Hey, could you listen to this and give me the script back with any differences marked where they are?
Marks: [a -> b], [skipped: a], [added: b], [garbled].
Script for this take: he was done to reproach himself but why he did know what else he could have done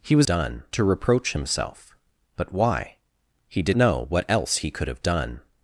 he was done to reproach himself but why he did know what else he could have done